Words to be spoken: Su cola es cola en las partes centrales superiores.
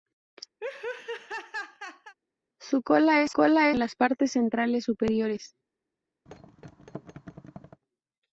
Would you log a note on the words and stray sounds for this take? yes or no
yes